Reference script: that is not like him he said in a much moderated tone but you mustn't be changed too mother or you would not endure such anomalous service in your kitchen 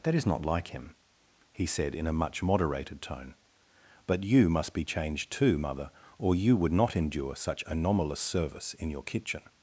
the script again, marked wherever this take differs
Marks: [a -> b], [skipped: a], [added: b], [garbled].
that is not like him he said in a much moderated tone but you [mustn't -> must] be changed too mother or you would not endure such anomalous service in your kitchen